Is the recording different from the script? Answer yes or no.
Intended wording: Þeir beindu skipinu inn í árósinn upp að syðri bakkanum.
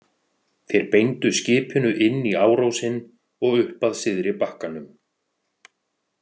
yes